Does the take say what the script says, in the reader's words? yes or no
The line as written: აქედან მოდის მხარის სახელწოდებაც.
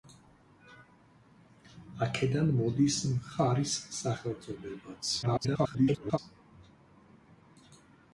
no